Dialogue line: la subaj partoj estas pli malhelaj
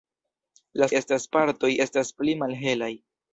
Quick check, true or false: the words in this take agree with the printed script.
false